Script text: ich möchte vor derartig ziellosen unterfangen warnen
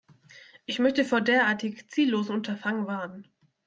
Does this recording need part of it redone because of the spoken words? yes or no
no